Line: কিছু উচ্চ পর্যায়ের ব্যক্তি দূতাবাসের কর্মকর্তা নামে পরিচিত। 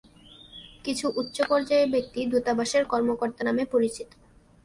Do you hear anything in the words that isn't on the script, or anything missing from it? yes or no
no